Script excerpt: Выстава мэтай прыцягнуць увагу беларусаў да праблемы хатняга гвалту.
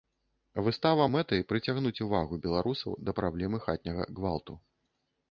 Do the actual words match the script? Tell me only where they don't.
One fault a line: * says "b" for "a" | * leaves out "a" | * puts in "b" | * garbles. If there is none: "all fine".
all fine